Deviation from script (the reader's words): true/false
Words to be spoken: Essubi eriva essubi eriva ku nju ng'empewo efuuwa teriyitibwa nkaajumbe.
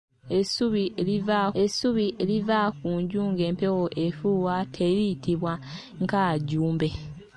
false